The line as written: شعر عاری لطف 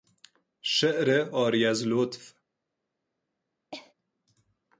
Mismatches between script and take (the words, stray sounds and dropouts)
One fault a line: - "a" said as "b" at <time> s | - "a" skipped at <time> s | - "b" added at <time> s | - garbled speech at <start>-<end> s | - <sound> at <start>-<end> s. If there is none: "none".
- "از" added at 1.7 s
- cough at 3.7-3.9 s